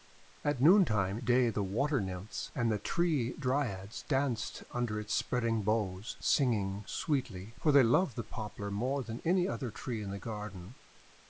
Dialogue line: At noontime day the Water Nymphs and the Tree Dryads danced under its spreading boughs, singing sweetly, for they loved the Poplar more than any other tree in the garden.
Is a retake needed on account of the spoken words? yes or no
no